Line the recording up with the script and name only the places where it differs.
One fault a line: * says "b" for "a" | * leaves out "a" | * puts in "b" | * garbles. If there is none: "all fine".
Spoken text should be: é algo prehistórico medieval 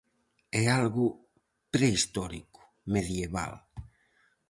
all fine